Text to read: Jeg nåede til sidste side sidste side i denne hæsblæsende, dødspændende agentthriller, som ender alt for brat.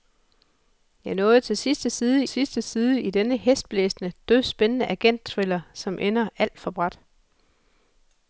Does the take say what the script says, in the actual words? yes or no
yes